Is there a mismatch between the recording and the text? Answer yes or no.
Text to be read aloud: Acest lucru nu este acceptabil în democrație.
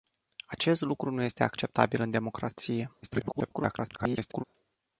yes